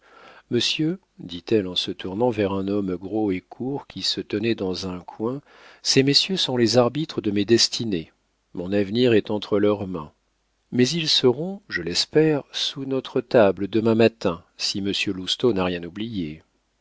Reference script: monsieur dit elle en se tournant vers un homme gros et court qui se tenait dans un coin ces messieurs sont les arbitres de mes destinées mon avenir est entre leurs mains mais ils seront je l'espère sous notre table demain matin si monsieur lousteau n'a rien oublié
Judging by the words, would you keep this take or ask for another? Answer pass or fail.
pass